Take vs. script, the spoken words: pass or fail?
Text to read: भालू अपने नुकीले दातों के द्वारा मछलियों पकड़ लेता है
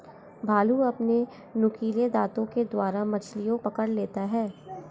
pass